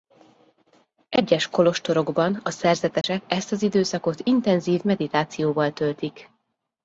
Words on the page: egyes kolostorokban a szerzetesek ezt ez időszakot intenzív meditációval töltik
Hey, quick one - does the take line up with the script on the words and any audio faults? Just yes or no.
no